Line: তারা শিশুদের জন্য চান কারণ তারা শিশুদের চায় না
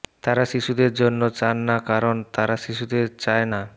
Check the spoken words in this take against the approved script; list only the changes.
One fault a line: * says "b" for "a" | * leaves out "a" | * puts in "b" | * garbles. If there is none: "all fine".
* puts in "না"